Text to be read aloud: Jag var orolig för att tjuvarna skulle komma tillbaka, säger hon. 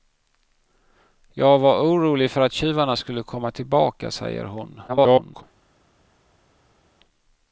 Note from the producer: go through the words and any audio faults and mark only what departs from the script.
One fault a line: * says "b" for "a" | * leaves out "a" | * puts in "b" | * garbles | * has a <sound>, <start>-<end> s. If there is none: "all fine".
* garbles